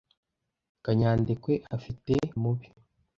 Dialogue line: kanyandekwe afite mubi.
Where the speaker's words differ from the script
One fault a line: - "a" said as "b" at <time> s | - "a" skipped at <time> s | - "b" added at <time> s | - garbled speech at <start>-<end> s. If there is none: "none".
none